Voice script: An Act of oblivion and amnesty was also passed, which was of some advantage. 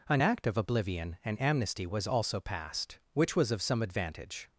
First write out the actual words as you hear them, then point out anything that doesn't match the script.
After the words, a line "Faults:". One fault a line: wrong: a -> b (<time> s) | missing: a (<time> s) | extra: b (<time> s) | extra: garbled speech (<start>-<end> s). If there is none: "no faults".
An Act of oblivion and amnesty was also passed, which was of some advantage.
Faults:
no faults